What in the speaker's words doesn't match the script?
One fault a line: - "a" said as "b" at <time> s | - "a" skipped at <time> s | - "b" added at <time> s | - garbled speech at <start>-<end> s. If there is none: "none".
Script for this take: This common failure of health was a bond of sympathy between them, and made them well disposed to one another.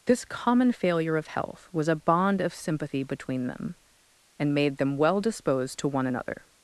none